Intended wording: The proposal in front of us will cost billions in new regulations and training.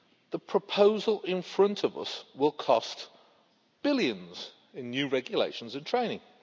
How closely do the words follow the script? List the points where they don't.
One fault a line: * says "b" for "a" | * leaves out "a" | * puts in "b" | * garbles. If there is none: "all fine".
all fine